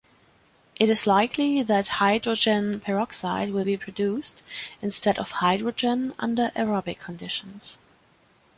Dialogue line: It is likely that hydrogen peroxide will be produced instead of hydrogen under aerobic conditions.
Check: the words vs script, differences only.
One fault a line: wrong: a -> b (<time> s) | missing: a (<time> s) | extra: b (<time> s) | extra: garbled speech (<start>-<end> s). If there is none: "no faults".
no faults